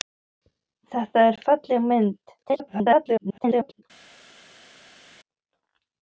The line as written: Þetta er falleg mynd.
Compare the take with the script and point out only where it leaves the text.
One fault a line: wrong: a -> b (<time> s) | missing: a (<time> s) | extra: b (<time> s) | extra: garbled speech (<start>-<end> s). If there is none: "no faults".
extra: garbled speech (2.4-3.8 s)